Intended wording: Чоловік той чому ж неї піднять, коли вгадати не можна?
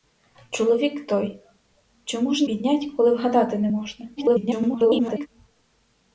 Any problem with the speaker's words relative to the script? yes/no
yes